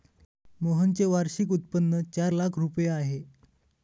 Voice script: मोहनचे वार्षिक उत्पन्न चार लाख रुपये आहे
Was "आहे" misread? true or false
false